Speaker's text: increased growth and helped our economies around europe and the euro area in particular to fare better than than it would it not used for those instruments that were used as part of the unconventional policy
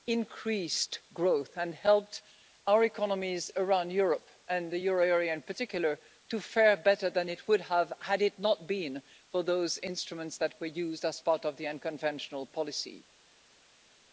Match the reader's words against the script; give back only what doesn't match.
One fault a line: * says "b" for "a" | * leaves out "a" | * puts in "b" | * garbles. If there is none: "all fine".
* leaves out "than"
* puts in "have had"
* says "been" for "used"